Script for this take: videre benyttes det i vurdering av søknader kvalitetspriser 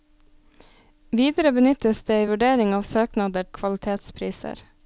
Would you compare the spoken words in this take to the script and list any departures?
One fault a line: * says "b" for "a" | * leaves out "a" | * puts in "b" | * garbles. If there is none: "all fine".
all fine